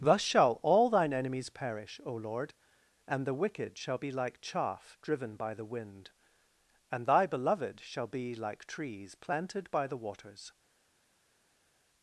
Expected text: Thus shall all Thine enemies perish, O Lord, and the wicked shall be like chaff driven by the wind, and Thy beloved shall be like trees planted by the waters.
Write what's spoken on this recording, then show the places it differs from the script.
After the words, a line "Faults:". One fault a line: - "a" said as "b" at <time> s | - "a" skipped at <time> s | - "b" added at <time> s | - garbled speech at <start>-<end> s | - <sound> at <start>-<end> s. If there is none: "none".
Thus shall all Thine enemies perish, O Lord, and the wicked shall be like chaff driven by the wind, and Thy beloved shall be like trees planted by the waters.
Faults:
none